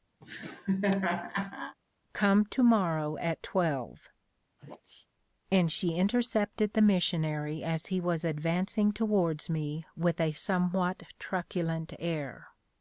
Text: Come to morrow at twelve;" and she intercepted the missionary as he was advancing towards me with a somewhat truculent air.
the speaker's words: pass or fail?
pass